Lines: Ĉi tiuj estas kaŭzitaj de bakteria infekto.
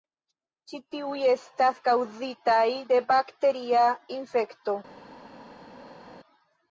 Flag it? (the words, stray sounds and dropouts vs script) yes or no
no